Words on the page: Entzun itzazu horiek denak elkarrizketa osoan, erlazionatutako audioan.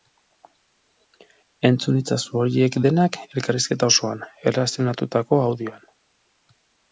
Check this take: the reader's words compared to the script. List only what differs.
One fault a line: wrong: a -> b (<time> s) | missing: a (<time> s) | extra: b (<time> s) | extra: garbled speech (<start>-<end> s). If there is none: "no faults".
no faults